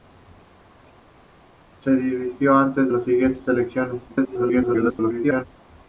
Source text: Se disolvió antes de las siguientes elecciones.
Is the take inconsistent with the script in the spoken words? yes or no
yes